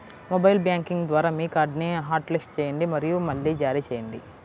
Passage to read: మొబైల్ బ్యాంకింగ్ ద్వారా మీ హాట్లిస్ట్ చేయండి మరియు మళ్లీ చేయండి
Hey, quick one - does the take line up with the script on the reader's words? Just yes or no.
no